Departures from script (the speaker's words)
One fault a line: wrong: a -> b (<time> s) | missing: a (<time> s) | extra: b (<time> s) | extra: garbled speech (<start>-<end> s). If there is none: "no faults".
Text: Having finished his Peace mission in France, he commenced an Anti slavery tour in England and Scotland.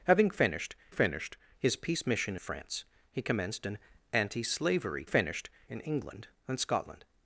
extra: finished (0.9 s)
missing: in (2.4 s)
wrong: tour -> finished (5.1 s)